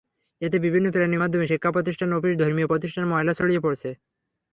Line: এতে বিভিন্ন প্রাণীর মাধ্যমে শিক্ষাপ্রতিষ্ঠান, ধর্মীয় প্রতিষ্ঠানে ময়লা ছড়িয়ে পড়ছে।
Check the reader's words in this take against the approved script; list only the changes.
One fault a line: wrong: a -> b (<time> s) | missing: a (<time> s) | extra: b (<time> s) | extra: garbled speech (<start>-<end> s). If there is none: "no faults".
extra: অফিস (2.1 s)